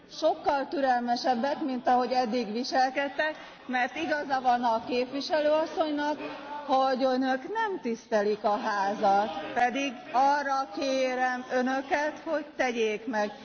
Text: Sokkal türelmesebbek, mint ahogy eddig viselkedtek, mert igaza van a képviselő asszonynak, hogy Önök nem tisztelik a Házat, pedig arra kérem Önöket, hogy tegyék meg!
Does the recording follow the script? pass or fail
pass